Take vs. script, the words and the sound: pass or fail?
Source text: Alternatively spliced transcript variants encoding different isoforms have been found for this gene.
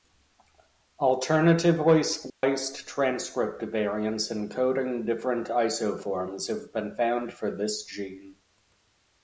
fail